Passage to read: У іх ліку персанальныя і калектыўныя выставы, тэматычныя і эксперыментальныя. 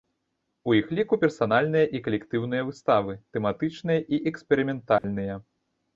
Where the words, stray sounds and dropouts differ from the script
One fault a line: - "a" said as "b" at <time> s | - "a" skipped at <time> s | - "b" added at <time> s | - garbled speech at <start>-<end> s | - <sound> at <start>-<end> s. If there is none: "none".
- dropout at 5.0-5.0 s